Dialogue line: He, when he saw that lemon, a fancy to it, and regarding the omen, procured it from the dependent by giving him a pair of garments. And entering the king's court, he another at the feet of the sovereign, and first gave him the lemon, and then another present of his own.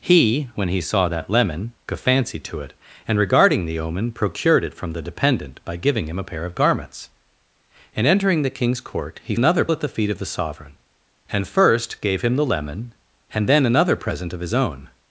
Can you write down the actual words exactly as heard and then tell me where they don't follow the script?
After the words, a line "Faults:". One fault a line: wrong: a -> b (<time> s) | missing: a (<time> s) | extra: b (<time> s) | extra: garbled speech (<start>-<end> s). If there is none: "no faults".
He, when he saw that lemon, a fancy to it, and regarding the omen, procured it from the dependent by giving him a pair of garments. And entering the king's court, he another at the feet of the sovereign, and first gave him the lemon, and then another present of his own.
Faults:
no faults